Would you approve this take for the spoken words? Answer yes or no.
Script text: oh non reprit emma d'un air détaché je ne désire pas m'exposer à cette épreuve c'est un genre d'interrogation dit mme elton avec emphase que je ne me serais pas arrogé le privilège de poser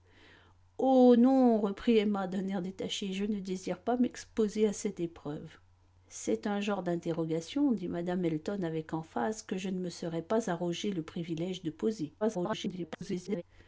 no